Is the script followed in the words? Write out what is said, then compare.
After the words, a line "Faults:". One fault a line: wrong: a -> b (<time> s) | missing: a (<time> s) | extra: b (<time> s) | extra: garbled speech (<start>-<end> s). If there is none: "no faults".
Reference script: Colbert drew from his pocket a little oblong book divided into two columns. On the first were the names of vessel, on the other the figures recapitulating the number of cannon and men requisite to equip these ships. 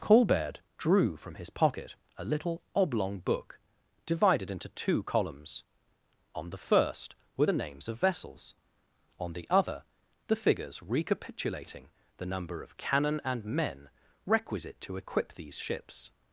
Colbert drew from his pocket a little oblong book divided into two columns. On the first were the names of vessels, on the other the figures recapitulating the number of cannon and men requisite to equip these ships.
Faults:
wrong: vessel -> vessels (8.0 s)